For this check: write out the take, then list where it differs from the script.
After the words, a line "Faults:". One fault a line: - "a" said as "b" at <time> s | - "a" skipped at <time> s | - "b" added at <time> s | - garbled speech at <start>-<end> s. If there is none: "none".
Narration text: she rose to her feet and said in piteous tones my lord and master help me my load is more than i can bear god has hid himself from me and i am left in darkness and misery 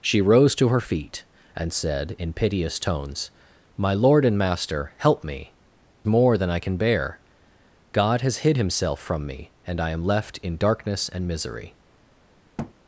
she rose to her feet and said in piteous tones my lord and master help me more than i can bear god has hid himself from me and i am left in darkness and misery
Faults:
- "my load is" skipped at 5.5 s